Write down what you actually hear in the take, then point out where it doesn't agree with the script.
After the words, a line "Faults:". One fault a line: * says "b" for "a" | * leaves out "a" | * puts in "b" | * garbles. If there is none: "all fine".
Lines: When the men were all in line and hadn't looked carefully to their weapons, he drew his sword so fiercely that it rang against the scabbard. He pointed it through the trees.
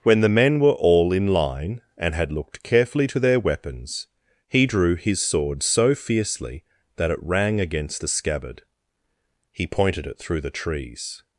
When the men were all in line and had looked carefully to their weapons, he drew his sword so fiercely that it rang against the scabbard. He pointed it through the trees.
Faults:
* says "had" for "hadn't"